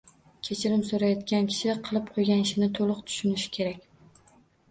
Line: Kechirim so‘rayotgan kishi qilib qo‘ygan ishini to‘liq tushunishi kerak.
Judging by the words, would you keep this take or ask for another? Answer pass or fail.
pass